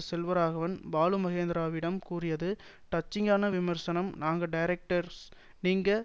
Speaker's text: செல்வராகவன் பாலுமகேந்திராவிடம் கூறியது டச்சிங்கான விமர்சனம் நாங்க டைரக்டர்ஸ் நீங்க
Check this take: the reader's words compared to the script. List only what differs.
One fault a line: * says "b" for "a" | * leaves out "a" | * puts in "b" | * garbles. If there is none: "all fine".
all fine